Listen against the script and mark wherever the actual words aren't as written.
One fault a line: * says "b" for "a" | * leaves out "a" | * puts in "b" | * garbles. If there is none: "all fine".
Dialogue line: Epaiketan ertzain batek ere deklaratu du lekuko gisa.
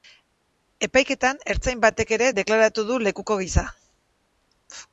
all fine